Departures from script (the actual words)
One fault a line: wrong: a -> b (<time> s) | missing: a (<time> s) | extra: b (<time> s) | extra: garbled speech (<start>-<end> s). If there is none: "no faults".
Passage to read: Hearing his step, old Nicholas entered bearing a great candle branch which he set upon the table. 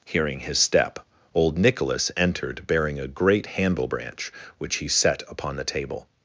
wrong: candle -> handle (3.4 s)